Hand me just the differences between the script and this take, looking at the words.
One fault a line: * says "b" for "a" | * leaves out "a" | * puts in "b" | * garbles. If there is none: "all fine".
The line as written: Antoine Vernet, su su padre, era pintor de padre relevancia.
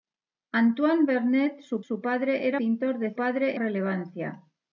all fine